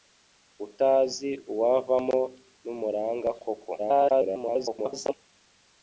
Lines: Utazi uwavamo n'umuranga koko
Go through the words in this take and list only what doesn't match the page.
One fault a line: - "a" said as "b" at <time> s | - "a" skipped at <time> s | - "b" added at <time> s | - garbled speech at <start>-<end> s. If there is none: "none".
- garbled speech at 3.8-5.1 s